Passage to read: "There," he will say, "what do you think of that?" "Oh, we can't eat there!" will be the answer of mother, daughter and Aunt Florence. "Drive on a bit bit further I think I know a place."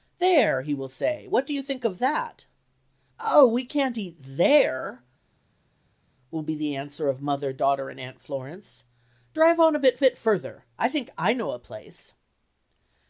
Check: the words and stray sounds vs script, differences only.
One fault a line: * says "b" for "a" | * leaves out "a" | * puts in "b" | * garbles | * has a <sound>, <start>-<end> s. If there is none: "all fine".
all fine